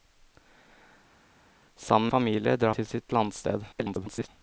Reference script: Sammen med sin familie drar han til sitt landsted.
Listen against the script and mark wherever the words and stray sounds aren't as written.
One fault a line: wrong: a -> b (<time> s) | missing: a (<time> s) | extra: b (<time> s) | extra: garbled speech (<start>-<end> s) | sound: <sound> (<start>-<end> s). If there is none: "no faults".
missing: med sin (2.1 s)
missing: han (2.7 s)
extra: garbled speech (3.7-4.3 s)